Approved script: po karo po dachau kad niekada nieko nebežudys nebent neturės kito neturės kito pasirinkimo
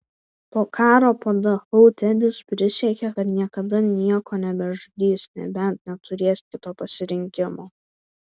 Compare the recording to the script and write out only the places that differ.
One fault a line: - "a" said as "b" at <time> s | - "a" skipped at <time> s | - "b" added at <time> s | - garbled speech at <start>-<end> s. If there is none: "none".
- "tedis prisiekė" added at 2.0 s
- "neturės kito" skipped at 6.8 s